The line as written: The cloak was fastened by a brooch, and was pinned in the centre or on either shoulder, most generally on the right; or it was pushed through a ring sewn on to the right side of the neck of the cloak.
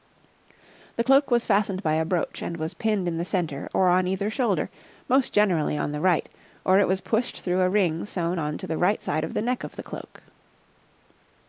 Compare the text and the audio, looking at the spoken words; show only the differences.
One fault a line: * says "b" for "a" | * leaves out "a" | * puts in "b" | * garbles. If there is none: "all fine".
all fine